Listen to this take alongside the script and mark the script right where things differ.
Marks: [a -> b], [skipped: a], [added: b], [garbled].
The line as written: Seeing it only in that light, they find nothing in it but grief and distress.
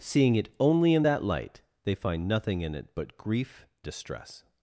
Seeing it only in that light, they find nothing in it but grief [skipped: and] distress.